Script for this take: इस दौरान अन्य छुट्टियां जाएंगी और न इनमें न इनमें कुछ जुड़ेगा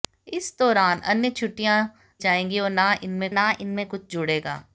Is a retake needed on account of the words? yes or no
no